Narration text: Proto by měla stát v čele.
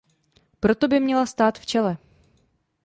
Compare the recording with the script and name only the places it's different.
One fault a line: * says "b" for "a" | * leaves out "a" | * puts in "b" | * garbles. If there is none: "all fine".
all fine